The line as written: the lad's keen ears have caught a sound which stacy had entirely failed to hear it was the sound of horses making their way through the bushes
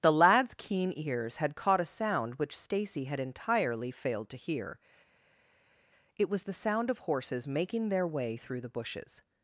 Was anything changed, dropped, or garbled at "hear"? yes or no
no